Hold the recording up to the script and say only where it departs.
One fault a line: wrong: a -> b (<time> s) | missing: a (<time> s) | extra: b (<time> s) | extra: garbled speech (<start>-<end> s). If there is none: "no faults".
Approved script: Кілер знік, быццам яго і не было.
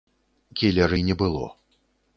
missing: знік быццам яго (0.9 s)